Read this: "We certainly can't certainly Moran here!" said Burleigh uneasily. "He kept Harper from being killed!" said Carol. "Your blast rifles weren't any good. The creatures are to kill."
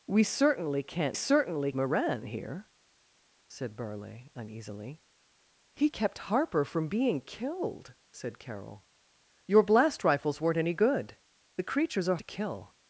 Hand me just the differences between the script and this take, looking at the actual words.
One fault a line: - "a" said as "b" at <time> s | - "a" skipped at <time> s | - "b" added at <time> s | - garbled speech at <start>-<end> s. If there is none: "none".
none